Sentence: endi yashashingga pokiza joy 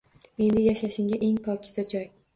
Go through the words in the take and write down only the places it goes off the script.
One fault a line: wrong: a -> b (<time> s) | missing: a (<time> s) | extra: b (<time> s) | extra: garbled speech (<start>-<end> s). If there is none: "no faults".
extra: eng (1.3 s)